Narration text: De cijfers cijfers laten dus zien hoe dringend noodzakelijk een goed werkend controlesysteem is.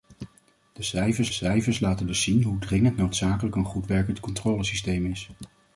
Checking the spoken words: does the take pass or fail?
pass